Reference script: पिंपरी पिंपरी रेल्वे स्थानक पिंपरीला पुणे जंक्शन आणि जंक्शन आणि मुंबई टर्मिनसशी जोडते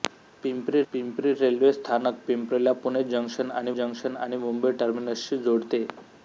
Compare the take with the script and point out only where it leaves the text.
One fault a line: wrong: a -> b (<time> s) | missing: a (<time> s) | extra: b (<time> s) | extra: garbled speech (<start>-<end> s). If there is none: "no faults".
no faults